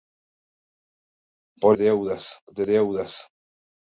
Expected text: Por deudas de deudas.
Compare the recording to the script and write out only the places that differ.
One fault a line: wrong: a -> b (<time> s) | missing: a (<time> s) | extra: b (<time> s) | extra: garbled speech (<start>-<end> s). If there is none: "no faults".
no faults